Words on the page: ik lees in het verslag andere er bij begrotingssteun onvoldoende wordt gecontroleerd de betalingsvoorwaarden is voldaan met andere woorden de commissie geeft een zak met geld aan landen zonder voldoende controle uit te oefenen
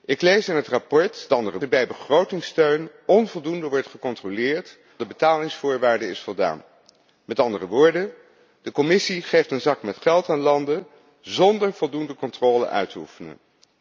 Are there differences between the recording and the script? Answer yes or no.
no